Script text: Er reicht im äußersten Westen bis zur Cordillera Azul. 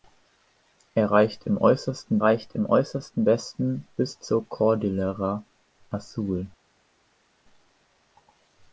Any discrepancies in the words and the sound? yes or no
yes